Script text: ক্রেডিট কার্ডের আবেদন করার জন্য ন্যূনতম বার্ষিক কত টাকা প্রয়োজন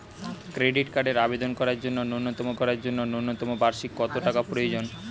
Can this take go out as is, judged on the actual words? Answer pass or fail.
fail